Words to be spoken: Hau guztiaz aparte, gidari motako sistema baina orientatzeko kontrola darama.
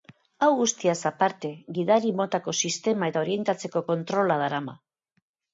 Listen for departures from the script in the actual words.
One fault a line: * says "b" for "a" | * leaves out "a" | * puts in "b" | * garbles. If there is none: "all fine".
* says "eta" for "baina"